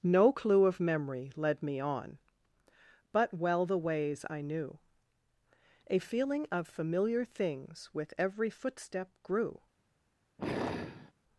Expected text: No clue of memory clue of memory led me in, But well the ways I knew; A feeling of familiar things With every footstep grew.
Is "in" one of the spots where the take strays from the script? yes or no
yes